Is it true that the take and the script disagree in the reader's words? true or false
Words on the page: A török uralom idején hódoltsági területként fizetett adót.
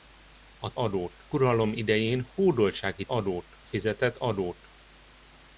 true